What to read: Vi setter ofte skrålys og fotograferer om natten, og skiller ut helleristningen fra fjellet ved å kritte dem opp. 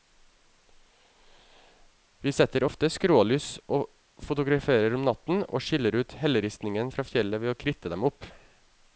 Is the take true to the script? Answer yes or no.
yes